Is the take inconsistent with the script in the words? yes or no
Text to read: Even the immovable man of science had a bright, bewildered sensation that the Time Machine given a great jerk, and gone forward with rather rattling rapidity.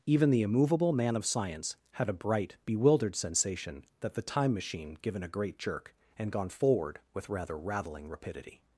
no